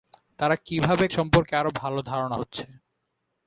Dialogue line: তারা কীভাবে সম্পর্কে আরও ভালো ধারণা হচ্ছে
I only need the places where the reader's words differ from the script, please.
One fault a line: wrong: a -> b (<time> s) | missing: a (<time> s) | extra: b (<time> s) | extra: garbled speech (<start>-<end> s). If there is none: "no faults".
no faults